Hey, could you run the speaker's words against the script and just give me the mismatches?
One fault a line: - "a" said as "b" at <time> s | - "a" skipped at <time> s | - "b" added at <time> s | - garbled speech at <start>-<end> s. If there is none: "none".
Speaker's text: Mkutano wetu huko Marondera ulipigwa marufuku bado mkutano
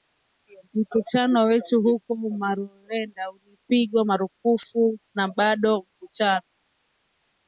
- "na" added at 5.1 s